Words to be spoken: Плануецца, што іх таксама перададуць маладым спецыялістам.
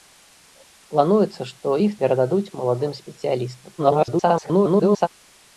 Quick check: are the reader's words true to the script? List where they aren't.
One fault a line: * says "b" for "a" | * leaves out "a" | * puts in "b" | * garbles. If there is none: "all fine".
* leaves out "таксама"
* garbles